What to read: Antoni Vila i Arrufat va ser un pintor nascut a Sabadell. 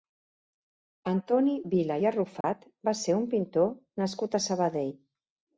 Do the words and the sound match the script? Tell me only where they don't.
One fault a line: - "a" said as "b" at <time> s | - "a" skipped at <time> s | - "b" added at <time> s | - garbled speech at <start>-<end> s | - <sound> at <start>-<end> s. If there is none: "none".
- dropout at 2.4-2.4 s